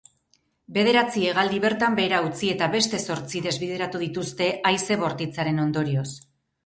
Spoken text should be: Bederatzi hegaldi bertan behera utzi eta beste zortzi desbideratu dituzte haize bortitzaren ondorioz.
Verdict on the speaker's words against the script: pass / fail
pass